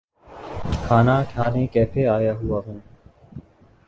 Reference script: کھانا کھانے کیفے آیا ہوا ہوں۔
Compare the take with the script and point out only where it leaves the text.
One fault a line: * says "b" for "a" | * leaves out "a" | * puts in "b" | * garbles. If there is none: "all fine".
all fine